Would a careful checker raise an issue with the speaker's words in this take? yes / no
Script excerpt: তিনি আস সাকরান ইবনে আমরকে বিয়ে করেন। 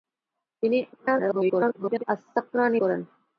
yes